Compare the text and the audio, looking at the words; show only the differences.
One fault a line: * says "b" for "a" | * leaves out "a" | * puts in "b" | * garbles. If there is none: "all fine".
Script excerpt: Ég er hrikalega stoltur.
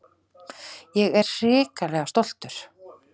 all fine